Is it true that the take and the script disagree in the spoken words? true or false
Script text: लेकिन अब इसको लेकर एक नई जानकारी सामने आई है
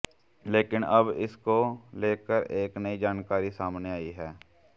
false